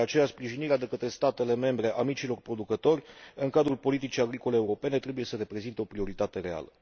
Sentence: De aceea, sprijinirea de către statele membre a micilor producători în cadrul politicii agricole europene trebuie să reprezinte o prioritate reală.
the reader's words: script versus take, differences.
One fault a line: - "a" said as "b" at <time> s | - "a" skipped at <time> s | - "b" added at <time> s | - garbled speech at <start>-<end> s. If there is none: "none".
none